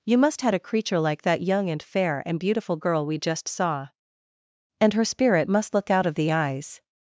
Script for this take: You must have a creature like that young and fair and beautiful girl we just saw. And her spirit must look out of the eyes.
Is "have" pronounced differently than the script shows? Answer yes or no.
yes